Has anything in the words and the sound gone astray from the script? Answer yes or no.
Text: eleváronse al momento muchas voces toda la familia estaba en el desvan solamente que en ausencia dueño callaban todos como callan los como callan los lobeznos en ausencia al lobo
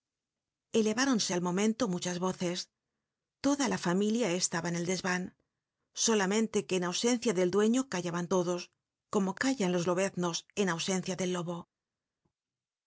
yes